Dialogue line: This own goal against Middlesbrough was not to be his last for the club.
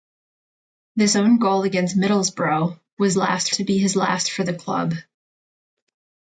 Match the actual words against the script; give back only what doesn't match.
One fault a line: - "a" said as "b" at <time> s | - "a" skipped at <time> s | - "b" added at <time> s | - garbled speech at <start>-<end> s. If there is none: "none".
- "not" said as "last" at 3.2 s